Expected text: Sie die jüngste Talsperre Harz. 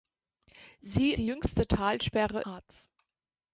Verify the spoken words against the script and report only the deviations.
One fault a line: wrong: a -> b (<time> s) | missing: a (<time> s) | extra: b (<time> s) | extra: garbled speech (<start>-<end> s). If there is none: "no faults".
no faults